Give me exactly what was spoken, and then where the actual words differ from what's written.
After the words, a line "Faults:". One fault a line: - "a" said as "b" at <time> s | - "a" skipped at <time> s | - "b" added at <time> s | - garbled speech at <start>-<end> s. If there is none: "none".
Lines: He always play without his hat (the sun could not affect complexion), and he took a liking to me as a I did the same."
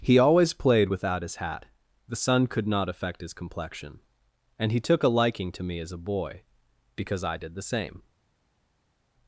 He always played without his hat (the sun could not affect his complexion), and he took a liking to me as a boy, because I did the same."
Faults:
- "play" said as "played" at 0.5 s
- "his" added at 3.2 s
- "boy because" added at 6.0 s